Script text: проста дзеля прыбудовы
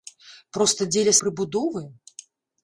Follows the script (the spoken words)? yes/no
yes